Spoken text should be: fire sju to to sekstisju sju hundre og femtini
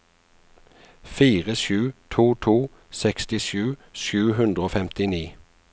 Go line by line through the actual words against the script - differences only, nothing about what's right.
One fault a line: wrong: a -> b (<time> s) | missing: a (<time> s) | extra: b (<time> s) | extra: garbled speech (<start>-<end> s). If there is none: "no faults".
no faults